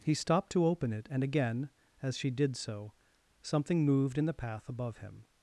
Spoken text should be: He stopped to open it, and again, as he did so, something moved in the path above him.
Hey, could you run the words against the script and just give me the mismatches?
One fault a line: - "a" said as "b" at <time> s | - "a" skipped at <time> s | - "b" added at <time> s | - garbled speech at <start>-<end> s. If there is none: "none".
- "he" said as "she" at 2.2 s